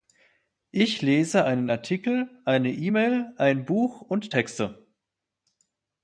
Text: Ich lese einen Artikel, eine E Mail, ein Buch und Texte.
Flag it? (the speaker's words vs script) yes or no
no